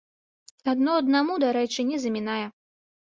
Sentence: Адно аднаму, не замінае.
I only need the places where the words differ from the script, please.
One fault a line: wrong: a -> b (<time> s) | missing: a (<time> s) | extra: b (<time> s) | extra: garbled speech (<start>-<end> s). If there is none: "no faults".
extra: дарэчы (1.4 s)